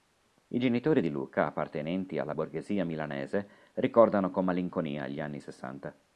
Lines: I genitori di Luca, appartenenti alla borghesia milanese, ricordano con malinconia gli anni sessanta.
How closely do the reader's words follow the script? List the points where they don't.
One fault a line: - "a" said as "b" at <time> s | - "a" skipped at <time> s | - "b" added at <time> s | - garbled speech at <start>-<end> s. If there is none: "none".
none